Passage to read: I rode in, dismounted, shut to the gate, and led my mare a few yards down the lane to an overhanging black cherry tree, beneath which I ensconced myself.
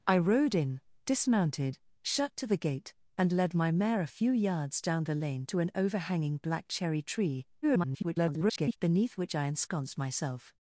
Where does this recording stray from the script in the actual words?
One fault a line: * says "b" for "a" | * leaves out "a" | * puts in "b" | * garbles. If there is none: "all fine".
* garbles